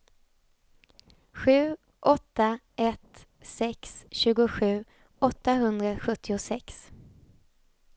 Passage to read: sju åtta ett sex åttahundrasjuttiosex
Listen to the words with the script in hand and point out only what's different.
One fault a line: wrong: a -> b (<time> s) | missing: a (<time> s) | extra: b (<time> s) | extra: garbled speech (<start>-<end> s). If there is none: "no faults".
extra: tjugosju (4.1 s)